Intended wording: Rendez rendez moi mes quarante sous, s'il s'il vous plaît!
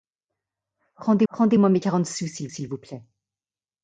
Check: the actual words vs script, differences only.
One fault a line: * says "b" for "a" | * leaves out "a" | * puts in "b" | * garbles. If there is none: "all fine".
all fine